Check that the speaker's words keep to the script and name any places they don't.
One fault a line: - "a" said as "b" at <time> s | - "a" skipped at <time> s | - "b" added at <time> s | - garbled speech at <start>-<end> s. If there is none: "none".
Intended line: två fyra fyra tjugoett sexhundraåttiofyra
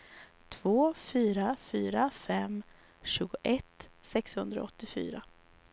- "fem" added at 2.1 s